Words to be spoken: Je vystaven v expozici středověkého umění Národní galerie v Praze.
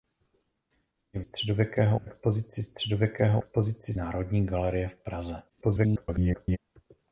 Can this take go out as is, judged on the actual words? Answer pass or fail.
fail